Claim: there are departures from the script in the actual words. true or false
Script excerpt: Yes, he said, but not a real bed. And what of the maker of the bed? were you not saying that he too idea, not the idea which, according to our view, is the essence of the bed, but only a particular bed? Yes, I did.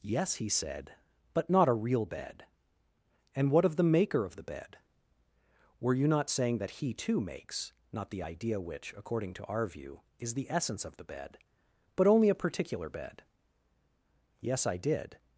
true